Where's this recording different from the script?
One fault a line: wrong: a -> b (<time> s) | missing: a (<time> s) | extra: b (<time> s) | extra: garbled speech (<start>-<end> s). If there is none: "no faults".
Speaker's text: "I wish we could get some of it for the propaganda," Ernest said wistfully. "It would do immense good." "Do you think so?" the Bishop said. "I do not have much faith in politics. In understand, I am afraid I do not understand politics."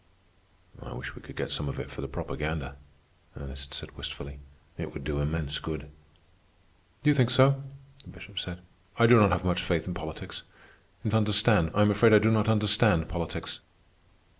no faults